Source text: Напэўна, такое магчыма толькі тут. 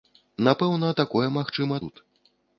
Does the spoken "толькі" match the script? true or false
false